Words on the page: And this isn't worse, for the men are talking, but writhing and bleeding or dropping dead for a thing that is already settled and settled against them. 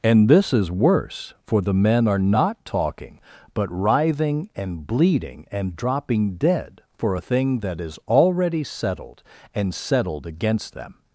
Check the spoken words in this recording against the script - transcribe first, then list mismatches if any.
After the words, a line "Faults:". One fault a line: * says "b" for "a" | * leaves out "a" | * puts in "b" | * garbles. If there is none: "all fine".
And this is worse, for the men are not talking, but writhing and bleeding and dropping dead for a thing that is already settled and settled against them.
Faults:
* says "is" for "isn't"
* puts in "not"
* says "and" for "or"